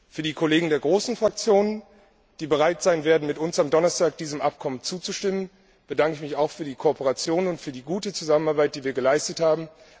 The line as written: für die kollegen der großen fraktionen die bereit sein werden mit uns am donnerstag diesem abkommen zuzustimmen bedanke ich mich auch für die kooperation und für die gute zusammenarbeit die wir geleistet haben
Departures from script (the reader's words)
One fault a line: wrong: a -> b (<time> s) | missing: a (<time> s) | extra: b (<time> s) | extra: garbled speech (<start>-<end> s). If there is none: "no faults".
no faults